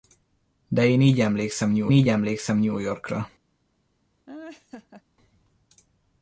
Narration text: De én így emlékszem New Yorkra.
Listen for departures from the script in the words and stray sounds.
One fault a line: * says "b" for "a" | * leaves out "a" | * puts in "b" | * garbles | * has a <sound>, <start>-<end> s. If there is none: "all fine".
* puts in "így emlékszem New"
* has a laugh, 4.3-5.0 s